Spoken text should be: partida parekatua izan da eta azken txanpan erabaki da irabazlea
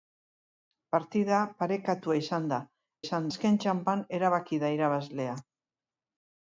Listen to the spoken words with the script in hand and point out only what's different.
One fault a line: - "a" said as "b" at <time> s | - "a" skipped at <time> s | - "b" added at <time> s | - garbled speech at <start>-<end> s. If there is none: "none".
- "eta" said as "izan" at 3.0 s